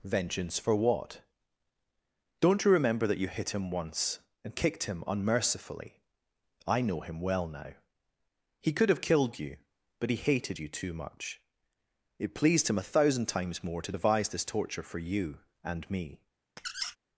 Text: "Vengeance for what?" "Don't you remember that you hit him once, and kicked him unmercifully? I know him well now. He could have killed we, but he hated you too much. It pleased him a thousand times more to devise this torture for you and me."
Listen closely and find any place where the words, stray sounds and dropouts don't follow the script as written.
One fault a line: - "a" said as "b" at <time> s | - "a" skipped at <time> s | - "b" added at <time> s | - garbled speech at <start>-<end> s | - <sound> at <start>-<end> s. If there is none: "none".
- "we" said as "you" at 9.4 s
- squeak at 16.6-17.0 s